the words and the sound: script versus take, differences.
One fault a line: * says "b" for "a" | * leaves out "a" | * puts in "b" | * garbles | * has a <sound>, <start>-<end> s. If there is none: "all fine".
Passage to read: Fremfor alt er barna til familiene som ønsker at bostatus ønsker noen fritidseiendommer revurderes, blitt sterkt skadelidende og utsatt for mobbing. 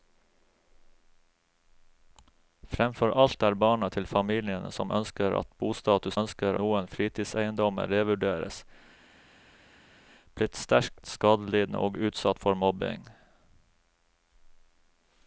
all fine